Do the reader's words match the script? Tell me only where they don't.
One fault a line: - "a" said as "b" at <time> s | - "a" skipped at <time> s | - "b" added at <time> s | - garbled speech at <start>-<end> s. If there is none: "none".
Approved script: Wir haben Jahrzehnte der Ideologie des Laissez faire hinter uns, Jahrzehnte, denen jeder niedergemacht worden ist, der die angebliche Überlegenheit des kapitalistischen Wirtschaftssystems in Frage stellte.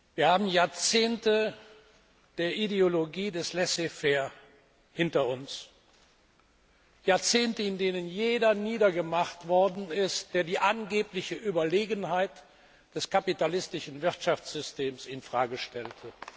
- "in" added at 7.6 s